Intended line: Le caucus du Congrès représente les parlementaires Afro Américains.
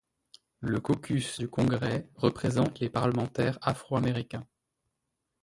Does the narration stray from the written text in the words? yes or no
no